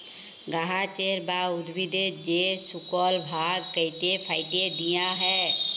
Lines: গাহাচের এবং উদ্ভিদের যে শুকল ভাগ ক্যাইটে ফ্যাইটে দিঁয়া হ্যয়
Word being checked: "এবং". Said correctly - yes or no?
no